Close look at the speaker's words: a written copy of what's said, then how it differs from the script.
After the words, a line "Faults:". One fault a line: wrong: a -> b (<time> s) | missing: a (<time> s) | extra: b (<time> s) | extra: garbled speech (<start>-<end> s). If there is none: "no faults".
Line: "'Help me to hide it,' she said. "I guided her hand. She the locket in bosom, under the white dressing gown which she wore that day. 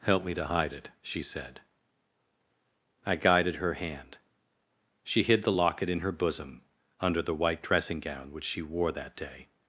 "'Help me to hide it,' she said. "I guided her hand. She hid the locket in her bosom, under the white dressing gown which she wore that day.
Faults:
extra: hid (5.2 s)
extra: her (6.0 s)